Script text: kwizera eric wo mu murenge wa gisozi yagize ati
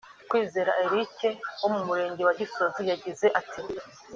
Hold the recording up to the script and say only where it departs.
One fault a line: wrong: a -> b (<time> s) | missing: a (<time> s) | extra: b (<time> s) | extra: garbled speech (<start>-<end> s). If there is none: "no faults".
no faults